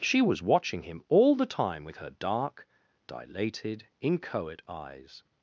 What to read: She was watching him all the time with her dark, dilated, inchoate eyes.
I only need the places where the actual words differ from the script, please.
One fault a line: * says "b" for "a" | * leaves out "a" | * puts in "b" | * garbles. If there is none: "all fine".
all fine